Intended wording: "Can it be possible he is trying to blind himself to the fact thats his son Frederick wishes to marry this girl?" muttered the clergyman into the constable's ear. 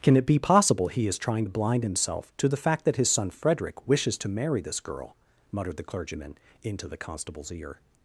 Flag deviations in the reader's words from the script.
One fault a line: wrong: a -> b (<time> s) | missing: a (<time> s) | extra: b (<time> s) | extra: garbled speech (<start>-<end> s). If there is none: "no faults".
wrong: thats -> that (2.8 s)